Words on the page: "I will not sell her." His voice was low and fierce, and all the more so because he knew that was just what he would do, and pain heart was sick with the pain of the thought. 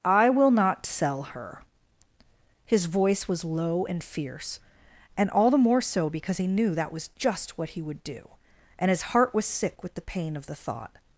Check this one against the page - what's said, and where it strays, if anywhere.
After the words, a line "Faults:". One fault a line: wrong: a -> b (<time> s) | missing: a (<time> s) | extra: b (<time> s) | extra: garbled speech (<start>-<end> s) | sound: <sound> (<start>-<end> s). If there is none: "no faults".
"I will not sell her." His voice was low and fierce, and all the more so because he knew that was just what he would do, and his heart was sick with the pain of the thought.
Faults:
wrong: pain -> his (8.9 s)